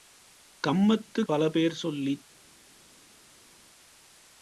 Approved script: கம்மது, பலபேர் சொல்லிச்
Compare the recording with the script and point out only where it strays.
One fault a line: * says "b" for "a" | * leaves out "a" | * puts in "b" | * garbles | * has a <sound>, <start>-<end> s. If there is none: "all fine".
all fine